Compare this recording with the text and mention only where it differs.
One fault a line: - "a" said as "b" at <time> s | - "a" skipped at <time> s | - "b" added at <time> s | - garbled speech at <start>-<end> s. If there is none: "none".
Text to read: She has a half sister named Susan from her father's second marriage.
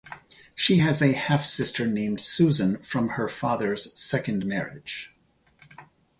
none